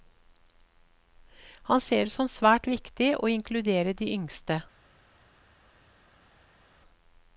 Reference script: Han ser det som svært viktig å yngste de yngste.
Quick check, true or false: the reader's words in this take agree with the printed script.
false